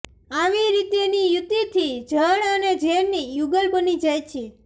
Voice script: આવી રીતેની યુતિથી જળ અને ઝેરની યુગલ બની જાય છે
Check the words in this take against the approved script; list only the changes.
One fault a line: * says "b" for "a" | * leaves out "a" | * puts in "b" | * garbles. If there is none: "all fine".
all fine